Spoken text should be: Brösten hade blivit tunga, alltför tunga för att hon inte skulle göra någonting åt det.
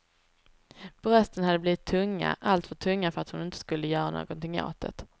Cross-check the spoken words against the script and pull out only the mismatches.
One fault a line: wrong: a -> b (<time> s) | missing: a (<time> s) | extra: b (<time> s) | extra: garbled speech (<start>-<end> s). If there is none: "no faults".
no faults